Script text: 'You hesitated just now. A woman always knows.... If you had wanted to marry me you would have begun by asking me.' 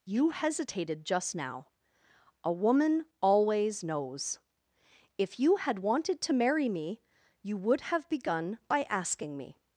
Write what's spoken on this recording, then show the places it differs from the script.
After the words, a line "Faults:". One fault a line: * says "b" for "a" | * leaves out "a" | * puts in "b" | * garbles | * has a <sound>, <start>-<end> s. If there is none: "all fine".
'You hesitated just now. A woman always knows.... If you had wanted to marry me you would have begun by asking me.'
Faults:
all fine